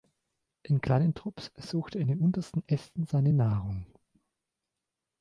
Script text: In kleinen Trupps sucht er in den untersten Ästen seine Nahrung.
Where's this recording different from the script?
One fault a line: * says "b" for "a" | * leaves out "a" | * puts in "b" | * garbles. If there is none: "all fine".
all fine